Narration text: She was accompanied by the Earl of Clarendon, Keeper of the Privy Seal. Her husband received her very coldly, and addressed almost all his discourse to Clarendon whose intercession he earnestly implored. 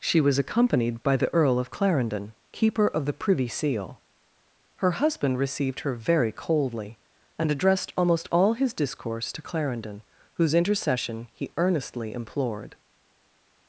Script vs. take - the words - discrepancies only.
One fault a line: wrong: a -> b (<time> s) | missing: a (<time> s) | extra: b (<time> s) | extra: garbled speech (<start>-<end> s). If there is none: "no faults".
no faults